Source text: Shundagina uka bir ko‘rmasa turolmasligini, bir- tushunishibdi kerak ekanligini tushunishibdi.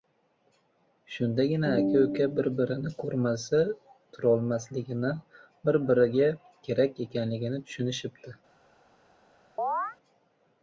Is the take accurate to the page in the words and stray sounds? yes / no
no